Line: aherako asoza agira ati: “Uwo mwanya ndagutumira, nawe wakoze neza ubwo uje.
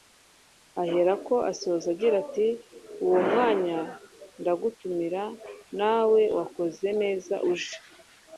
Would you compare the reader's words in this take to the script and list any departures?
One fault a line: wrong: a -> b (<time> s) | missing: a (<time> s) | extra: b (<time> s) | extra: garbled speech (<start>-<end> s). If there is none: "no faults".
missing: ubwo (7.4 s)